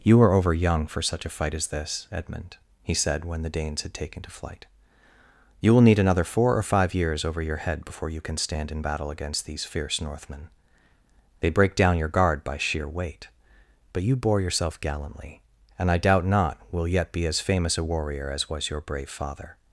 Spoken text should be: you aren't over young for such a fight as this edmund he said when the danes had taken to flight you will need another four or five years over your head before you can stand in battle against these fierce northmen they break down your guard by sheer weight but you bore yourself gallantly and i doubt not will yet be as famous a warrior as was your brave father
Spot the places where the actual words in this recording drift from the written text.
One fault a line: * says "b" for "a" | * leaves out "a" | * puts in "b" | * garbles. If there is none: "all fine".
* says "are" for "aren't"